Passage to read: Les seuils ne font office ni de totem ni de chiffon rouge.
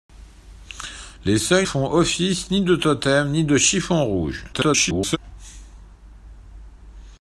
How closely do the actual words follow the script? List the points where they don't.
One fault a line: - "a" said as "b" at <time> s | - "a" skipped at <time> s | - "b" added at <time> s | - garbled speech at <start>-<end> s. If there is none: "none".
- "ne" skipped at 1.7 s
- garbled speech at 4.5-5.2 s